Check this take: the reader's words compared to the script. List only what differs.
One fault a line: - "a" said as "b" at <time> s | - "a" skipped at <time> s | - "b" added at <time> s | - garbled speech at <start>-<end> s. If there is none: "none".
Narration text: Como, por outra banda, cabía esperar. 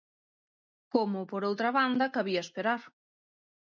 none